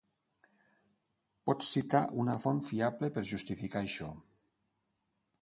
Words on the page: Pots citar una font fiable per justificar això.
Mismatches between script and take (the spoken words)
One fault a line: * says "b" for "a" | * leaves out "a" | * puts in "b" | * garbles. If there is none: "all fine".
all fine